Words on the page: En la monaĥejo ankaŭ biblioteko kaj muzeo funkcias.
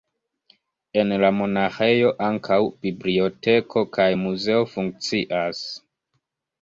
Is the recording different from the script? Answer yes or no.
no